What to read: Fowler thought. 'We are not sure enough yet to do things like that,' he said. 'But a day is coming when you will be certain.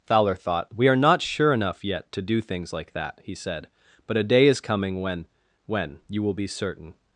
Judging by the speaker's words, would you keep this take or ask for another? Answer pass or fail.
fail